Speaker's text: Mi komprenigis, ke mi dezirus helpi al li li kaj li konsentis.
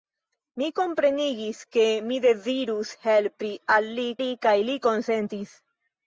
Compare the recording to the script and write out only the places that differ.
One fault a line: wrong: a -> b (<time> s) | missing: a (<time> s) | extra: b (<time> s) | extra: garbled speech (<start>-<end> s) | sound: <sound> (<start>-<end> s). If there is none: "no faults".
no faults